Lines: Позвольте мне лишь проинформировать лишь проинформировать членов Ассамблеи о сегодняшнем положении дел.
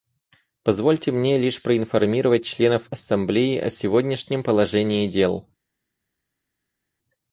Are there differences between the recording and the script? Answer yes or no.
yes